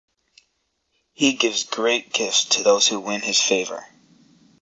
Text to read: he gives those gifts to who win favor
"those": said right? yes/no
no